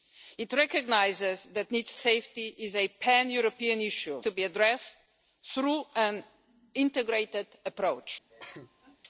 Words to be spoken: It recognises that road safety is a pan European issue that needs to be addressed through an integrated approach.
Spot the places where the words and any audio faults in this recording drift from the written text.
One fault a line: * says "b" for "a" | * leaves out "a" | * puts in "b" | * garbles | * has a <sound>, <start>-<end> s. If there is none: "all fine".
* says "needs" for "road"
* leaves out "that needs"
* has a cough, 8.3-9.0 s